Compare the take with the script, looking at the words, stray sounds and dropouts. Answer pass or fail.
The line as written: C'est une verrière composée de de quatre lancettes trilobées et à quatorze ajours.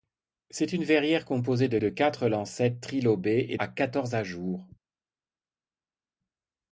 pass